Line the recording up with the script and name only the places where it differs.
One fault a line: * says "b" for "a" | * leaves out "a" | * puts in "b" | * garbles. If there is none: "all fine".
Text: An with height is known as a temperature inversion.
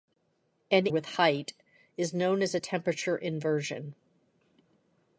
all fine